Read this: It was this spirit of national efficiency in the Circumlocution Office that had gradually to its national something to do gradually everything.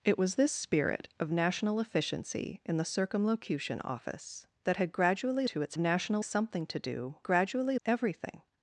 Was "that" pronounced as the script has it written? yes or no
yes